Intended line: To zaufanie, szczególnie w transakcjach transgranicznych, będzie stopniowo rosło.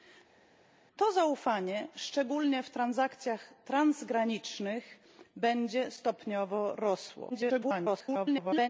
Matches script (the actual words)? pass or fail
fail